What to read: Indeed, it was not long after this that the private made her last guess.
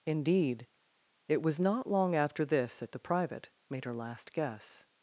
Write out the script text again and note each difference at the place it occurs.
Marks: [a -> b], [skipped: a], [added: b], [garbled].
Indeed, it was not long after this that the private made her last guess.